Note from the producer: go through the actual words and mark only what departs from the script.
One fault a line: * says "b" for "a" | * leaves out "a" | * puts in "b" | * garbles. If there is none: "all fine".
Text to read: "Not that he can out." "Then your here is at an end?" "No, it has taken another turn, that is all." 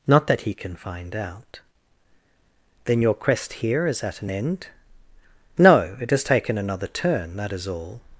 * puts in "find"
* puts in "quest"